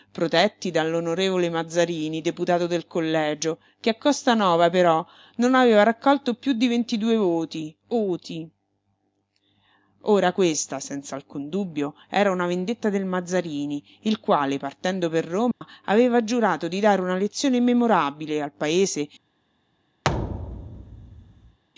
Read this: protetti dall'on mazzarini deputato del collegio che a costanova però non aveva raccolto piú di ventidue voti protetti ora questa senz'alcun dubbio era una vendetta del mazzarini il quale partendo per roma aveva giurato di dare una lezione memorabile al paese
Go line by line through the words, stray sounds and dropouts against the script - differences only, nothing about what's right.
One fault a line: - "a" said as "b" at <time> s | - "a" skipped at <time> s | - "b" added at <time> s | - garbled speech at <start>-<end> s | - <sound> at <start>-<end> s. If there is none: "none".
- "protetti" said as "oti" at 7.9 s
- dropout at 15.5-15.6 s
- thud at 20.0-21.6 s